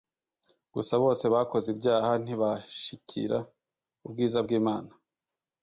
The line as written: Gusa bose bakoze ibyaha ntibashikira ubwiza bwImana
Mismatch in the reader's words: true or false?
false